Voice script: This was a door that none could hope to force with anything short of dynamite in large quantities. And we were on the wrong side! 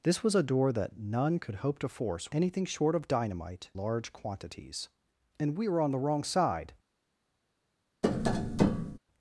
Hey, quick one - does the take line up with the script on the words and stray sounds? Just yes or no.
no